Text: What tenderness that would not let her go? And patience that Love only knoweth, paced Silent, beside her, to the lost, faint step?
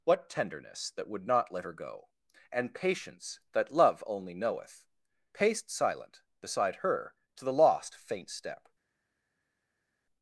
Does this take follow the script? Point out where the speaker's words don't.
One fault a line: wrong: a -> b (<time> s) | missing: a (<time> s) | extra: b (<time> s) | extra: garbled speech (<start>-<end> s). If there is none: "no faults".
no faults